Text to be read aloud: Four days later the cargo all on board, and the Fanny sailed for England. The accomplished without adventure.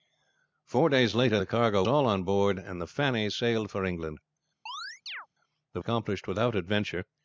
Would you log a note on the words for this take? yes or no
no